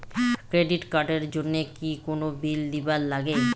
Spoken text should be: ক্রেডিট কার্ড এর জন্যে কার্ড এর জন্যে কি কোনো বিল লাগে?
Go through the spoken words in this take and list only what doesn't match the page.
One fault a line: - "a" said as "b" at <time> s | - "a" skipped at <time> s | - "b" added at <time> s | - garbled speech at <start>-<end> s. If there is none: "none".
- "কার্ড এর জন্যে" skipped at 1.6 s
- "দিবার" added at 2.7 s